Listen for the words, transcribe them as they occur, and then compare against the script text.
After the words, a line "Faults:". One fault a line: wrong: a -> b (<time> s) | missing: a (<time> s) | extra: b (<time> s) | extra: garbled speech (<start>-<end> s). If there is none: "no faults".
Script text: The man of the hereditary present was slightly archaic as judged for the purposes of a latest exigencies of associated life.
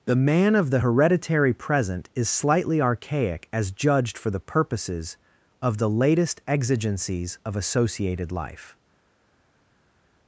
The man of the hereditary present is slightly archaic as judged for the purposes of the latest exigencies of associated life.
Faults:
wrong: was -> is (2.1 s)
wrong: a -> the (5.8 s)